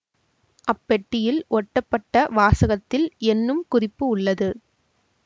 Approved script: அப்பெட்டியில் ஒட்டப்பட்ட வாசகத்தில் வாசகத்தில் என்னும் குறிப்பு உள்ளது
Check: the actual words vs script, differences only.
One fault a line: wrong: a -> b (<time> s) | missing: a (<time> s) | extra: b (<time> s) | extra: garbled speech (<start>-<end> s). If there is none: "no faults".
missing: வாசகத்தில் (3.1 s)